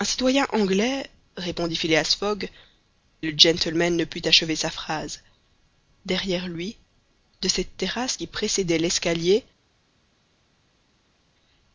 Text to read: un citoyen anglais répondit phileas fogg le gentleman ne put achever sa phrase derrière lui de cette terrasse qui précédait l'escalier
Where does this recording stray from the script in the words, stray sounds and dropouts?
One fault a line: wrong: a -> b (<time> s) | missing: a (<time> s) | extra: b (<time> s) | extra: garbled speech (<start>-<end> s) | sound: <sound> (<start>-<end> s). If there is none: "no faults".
no faults